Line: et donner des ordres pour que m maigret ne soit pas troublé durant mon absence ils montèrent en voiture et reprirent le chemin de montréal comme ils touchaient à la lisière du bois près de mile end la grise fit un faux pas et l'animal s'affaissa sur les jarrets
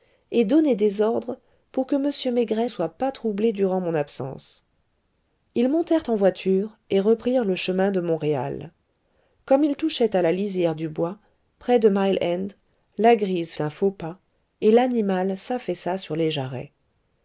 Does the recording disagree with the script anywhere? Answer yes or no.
yes